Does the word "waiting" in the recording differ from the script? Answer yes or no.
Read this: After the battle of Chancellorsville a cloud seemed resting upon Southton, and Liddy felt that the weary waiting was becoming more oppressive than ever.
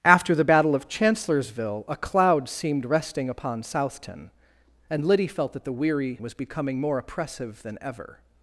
yes